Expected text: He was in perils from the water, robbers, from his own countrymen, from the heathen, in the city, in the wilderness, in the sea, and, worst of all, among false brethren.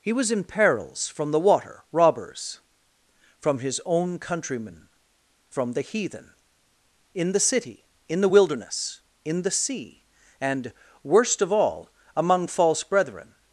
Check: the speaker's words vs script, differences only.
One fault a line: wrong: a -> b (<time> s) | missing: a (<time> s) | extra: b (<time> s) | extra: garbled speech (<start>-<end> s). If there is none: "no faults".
no faults